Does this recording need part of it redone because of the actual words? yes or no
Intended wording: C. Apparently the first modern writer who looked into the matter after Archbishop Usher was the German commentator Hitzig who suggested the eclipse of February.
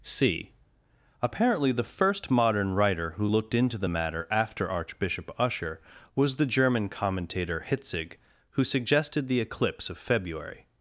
no